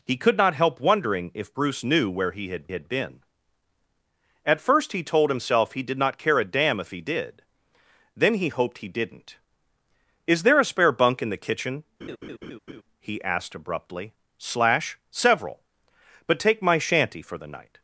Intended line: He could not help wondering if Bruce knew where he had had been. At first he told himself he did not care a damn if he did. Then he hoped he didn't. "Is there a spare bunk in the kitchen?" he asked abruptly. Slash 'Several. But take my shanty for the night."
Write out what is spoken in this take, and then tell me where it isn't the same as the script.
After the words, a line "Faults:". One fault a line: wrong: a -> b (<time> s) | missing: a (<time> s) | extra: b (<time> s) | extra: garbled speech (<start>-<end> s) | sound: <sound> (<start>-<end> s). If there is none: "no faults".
He could not help wondering if Bruce knew where he had had been. At first he told himself he did not care a damn if he did. Then he hoped he didn't. "Is there a spare bunk in the kitchen?" he asked abruptly. Slash 'Several. But take my shanty for the night."
Faults:
sound: laugh (12.0-12.8 s)